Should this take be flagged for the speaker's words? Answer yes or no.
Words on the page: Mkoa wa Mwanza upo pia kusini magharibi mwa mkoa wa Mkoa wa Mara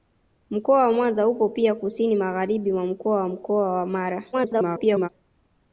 yes